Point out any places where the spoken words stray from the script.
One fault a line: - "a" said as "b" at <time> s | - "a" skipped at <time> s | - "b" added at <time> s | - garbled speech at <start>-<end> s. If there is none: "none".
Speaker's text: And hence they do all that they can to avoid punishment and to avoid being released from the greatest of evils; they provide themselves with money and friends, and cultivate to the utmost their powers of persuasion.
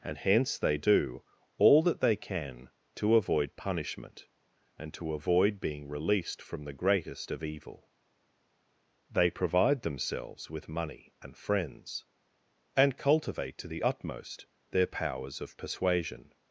- "evils" said as "evil" at 7.4 s